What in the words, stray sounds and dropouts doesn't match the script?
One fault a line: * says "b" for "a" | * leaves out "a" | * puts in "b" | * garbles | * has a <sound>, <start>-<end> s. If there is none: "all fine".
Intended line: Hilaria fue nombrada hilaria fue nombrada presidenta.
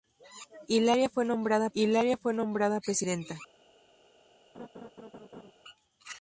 * has a laugh, 4.5-5.5 s